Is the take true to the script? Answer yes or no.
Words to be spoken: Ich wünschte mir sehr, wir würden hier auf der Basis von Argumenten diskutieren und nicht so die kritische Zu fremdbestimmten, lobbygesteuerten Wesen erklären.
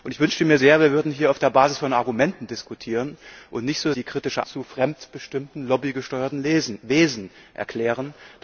yes